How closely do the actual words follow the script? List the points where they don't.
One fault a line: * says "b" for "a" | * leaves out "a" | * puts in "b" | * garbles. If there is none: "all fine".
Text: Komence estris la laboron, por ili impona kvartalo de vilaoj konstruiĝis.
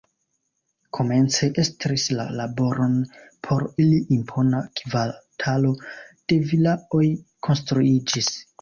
all fine